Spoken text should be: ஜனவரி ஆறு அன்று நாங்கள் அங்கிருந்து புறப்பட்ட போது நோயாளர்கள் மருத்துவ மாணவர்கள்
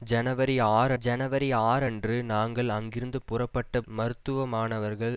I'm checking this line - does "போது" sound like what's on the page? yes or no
no